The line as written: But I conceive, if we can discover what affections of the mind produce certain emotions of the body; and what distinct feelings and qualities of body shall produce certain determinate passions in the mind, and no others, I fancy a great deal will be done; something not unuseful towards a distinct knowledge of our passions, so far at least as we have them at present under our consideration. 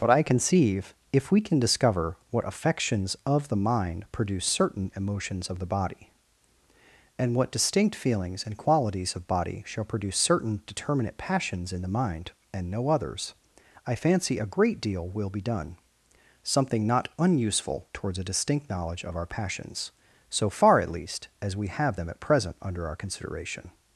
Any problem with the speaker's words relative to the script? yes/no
no